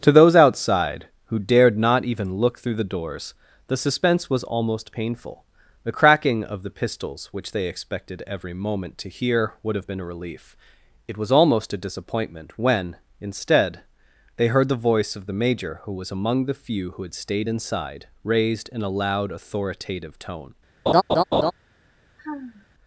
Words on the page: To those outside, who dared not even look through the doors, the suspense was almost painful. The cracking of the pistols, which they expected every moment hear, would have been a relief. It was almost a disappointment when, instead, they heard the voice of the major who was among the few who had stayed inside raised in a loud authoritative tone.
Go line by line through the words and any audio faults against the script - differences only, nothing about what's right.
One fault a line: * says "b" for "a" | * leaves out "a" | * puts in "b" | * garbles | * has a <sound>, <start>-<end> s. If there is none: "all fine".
* puts in "to"
* has a laugh, 20.9-21.5 s
* has a sigh, 22.2-22.7 s